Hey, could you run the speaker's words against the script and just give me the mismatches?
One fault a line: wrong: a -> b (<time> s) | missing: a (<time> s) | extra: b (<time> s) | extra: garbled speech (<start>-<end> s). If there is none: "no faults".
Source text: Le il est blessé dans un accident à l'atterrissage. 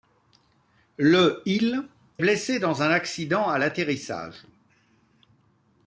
missing: est (1.9 s)